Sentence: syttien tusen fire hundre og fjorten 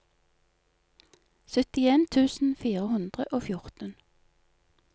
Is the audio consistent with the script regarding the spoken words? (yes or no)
yes